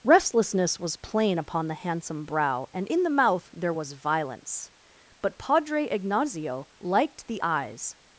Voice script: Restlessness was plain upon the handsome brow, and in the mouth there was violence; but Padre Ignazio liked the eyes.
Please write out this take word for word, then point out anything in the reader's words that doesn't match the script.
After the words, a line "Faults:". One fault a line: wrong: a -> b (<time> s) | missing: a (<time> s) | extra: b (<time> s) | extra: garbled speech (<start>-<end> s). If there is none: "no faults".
Restlessness was plain upon the handsome brow, and in the mouth there was violence; but Padre Ignazio liked the eyes.
Faults:
no faults